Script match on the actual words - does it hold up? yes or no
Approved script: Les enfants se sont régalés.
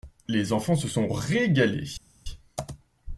yes